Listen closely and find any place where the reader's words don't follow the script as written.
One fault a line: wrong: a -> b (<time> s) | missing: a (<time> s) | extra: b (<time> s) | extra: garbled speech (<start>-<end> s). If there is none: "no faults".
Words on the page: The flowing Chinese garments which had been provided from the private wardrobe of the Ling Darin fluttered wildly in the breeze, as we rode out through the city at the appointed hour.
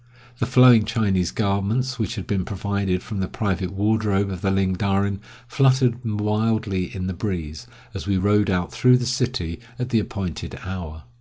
no faults